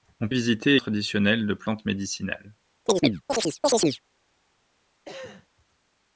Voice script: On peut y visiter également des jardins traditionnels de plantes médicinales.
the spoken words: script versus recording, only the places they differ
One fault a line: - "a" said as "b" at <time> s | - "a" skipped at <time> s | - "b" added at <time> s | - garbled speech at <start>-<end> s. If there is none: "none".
- "peut" skipped at 0.3 s
- "également des jardins" skipped at 0.8 s